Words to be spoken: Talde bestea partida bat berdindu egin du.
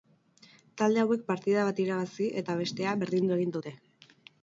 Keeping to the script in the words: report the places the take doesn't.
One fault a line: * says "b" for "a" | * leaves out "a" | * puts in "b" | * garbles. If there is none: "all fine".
* says "hauek" for "bestea"
* puts in "irabazi eta bestea"
* says "dute" for "du"